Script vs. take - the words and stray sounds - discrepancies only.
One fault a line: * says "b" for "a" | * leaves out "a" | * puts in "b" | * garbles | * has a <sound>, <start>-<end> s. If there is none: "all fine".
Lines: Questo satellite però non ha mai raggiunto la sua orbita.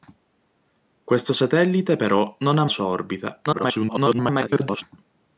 * leaves out "mai raggiunto la"
* garbles